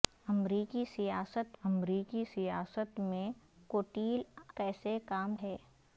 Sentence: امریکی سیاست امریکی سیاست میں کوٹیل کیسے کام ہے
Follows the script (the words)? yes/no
yes